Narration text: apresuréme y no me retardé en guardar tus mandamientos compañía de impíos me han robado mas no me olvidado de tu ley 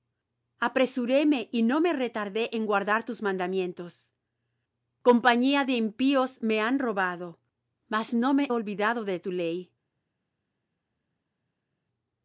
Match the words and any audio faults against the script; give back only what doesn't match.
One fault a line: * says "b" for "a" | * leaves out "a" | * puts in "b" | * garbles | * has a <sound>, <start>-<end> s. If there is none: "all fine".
all fine